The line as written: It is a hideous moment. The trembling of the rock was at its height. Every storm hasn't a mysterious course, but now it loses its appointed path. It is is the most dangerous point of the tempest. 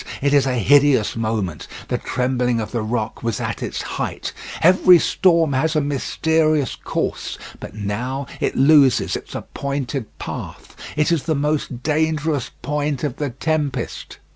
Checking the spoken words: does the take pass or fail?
fail